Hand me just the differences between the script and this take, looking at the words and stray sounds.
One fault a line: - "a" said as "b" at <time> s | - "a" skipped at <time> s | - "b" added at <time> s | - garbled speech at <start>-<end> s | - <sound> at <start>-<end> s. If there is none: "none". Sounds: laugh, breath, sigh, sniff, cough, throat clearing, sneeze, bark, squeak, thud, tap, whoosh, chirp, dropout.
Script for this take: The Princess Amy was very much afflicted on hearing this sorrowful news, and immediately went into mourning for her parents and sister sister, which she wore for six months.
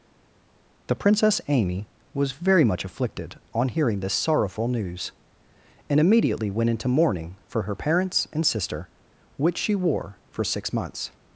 - "sister" skipped at 8.9 s